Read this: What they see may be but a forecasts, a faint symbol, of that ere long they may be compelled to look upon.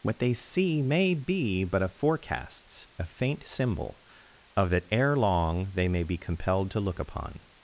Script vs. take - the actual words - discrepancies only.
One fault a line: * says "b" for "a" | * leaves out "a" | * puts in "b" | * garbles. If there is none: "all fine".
all fine